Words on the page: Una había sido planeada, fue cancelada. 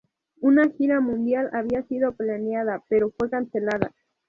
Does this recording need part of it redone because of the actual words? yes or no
yes